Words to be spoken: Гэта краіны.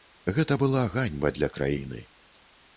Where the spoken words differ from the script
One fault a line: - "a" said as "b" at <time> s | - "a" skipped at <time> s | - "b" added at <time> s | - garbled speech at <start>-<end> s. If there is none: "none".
- "была ганьба для" added at 0.6 s